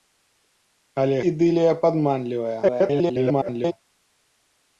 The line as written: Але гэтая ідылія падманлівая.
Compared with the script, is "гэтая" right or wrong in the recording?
wrong